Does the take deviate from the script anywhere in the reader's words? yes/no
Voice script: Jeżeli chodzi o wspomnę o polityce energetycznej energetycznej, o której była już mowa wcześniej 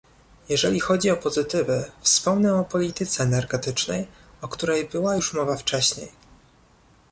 yes